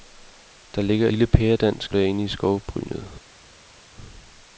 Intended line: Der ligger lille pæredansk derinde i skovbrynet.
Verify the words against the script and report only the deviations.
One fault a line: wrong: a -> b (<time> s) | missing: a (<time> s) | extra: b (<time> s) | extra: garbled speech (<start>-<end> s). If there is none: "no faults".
no faults